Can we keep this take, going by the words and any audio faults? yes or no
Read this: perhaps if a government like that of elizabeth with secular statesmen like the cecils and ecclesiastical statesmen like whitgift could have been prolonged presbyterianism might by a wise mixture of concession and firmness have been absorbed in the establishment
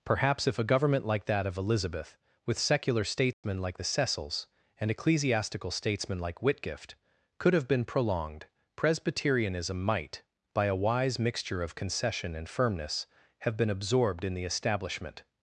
no